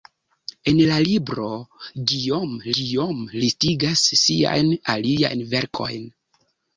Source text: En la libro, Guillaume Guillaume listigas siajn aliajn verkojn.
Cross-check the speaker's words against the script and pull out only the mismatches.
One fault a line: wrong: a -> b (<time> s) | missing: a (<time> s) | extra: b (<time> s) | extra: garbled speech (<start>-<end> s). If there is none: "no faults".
no faults